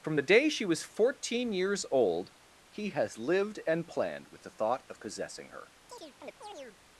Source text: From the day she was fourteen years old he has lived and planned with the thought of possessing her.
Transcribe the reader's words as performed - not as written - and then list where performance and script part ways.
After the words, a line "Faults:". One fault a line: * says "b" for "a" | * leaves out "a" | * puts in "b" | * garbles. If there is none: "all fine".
From the day she was fourteen years old he has lived and planned with the thought of possessing her.
Faults:
all fine